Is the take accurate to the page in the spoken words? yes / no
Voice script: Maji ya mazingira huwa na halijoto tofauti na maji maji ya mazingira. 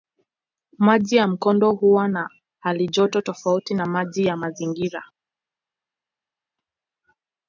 no